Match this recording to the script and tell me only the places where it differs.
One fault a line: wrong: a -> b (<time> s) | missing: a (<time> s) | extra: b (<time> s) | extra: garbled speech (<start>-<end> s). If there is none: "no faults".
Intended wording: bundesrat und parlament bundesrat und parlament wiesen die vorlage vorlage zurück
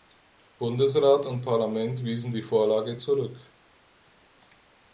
missing: bundesrat und parlament (2.0 s)
missing: vorlage (3.0 s)